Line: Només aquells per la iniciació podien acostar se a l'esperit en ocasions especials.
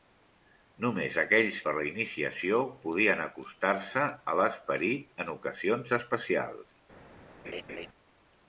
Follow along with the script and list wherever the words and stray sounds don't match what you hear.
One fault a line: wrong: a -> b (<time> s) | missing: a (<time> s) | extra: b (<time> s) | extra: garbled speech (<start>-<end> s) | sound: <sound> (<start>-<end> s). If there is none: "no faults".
sound: laugh (7.4-7.9 s)